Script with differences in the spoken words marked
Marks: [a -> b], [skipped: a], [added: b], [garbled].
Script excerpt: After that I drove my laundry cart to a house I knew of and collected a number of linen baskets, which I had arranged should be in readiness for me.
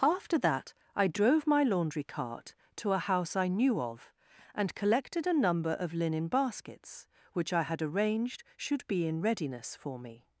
After that I drove my laundry cart to a house I knew of and collected a number of linen baskets, which I had arranged should be in readiness for me.